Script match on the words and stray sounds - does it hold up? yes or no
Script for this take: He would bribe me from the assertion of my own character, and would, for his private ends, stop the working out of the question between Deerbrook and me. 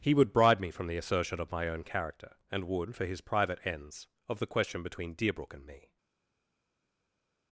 no